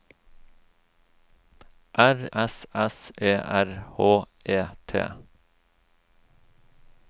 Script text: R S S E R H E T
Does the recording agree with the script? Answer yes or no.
yes